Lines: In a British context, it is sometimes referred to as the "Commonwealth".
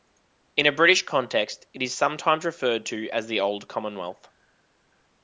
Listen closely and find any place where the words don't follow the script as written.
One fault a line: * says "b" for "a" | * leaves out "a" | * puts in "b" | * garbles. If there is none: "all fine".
* puts in "Old"